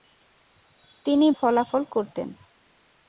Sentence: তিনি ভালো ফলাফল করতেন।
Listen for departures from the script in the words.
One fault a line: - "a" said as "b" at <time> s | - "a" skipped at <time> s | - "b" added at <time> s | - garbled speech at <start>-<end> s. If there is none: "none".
- "ভালো" skipped at 1.3 s